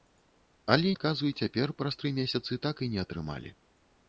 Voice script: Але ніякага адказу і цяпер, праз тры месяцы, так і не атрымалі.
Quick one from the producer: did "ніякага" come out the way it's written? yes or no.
no